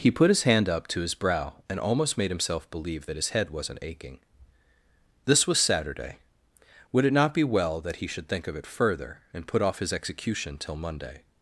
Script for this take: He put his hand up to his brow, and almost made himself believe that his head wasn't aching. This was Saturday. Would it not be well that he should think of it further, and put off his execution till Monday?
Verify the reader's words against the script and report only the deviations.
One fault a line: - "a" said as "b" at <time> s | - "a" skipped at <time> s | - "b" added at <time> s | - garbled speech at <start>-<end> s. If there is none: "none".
none